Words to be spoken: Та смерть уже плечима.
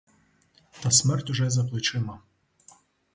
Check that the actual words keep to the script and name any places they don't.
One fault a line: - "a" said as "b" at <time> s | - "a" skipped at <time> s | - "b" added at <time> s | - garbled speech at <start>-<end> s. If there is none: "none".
- "за" added at 1.5 s